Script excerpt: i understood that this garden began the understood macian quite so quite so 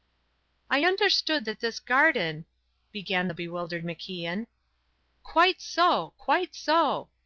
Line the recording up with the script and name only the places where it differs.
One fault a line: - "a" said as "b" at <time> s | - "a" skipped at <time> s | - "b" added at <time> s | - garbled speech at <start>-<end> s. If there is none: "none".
- "understood" said as "bewildered" at 3.3 s